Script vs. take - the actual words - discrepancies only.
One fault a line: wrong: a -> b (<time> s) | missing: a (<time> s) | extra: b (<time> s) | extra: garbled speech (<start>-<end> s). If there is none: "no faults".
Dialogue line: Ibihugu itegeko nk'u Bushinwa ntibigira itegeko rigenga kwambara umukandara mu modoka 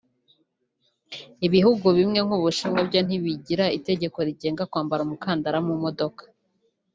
wrong: itegeko -> bimwe (2.0 s)
extra: byo (2.9 s)